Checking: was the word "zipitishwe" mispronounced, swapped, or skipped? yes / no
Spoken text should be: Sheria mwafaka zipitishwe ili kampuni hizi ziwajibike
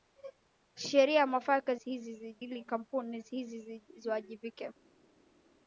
yes